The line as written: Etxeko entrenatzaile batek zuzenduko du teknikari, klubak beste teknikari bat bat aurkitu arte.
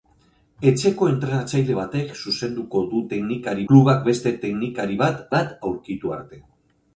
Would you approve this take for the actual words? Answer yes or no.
yes